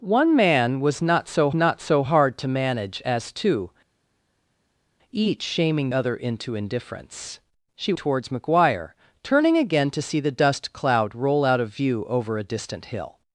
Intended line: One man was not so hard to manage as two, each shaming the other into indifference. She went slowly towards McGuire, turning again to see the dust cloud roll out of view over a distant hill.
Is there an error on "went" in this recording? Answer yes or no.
yes